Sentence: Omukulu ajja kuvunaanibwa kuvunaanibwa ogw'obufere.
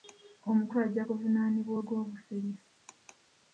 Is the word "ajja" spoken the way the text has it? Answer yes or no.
yes